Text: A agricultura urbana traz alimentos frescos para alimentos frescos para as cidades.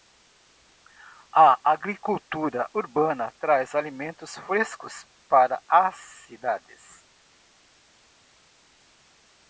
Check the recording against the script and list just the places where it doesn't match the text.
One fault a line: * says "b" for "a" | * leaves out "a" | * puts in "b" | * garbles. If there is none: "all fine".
* leaves out "alimentos frescos para"